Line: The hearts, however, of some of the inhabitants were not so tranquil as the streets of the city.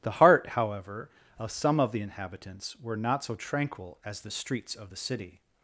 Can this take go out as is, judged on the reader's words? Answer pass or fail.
fail